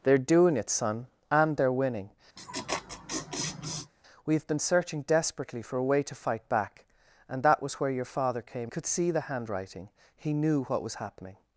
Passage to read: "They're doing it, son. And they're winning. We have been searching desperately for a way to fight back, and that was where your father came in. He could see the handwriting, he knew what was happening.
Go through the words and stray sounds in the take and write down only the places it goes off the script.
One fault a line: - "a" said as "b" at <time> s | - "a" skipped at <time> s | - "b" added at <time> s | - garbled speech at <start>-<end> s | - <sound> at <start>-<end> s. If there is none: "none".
- laugh at 2.4-3.9 s
- "in He" skipped at 8.7 s